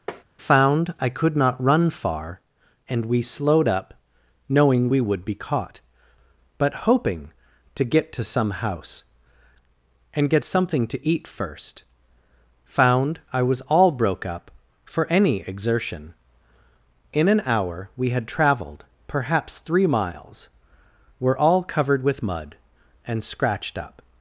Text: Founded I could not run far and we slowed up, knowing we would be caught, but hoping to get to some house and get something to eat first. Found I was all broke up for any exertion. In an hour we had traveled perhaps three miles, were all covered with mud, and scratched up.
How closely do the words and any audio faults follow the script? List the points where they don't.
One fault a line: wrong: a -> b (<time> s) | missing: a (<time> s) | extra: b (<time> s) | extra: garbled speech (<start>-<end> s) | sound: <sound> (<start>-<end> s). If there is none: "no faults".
sound: tap (0.1-0.2 s)
wrong: Founded -> Found (0.4 s)